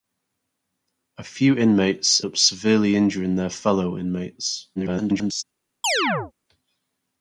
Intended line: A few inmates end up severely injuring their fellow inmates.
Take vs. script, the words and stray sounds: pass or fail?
fail